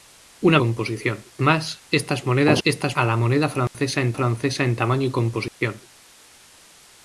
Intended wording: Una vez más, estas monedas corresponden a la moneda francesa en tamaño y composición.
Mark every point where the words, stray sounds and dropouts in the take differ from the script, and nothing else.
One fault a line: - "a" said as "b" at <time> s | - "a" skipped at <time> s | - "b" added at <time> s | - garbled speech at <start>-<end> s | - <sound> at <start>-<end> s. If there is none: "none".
- "vez" said as "composición" at 0.6 s
- "corresponden" said as "estas" at 2.6 s
- dropout at 3.7-3.7 s
- "francesa en" added at 4.1 s
- dropout at 5.5-5.6 s